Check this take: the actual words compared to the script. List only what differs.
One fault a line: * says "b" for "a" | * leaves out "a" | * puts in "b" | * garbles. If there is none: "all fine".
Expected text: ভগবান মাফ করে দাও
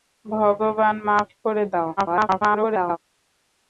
* garbles